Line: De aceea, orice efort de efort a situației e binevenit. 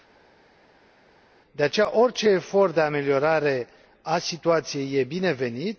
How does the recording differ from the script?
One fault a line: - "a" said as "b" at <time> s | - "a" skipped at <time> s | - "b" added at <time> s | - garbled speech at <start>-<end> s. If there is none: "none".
- "efort" said as "ameliorare" at 2.8 s